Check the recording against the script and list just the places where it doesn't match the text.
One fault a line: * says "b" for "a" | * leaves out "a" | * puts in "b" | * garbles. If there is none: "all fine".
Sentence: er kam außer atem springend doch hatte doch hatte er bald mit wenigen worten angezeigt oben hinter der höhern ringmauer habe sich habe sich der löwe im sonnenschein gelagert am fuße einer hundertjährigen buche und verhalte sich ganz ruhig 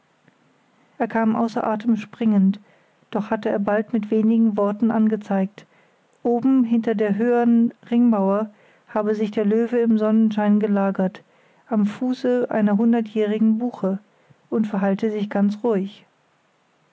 * leaves out "doch hatte"
* leaves out "habe sich"